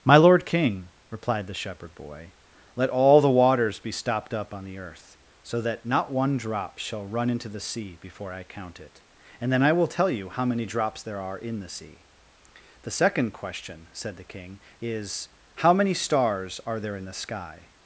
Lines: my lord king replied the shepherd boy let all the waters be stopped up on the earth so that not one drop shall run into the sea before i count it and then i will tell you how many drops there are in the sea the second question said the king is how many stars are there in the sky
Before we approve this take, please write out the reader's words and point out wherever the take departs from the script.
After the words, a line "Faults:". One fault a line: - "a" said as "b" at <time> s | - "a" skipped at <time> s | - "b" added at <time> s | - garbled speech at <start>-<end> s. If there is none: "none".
my lord king replied the shepherd boy let all the waters be stopped up on the earth so that not one drop shall run into the sea before i count it and then i will tell you how many drops there are in the sea the second question said the king is how many stars are there in the sky
Faults:
none